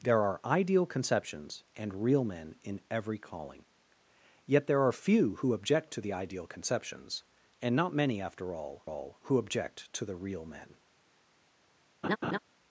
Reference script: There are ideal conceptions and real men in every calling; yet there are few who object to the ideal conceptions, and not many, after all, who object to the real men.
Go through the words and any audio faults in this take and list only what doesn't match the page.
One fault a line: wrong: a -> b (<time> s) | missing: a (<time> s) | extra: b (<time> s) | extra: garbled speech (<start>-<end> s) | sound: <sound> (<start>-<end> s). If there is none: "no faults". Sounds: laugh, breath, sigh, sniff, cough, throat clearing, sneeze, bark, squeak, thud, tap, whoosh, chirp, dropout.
extra: all (8.8 s)
sound: laugh (12.0-12.4 s)